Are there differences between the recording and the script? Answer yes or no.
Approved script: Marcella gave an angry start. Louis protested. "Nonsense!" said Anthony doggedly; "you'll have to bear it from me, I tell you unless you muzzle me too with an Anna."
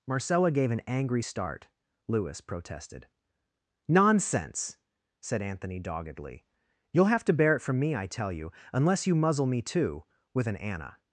no